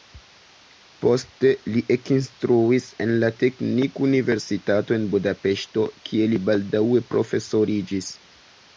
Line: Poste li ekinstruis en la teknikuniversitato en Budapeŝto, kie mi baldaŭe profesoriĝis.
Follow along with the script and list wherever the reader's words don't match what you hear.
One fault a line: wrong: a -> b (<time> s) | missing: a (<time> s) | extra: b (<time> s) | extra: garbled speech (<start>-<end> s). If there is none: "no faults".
wrong: mi -> li (6.3 s)